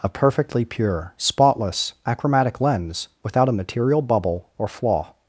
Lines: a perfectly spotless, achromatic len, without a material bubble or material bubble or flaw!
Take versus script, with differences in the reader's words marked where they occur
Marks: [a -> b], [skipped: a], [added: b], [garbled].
a perfectly [added: pure] spotless, achromatic [len, -> lens] without a material bubble or [skipped: material bubble or] flaw!